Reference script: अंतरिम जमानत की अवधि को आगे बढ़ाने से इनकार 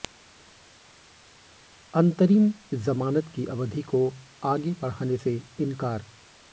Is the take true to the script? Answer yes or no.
yes